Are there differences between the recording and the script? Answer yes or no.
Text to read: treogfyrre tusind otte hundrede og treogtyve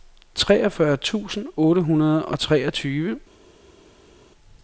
no